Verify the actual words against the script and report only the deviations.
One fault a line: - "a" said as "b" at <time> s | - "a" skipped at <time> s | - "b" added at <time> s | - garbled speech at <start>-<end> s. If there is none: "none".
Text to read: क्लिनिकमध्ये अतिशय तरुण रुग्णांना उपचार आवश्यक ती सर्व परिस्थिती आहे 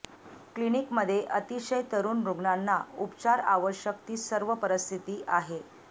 none